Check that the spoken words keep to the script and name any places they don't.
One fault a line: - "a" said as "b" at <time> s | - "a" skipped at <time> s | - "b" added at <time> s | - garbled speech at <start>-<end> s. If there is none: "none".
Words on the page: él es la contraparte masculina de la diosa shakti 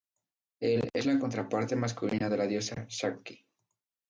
none